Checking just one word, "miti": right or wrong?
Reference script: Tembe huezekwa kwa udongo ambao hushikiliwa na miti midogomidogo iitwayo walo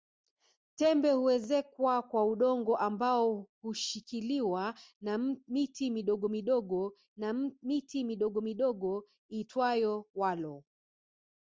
right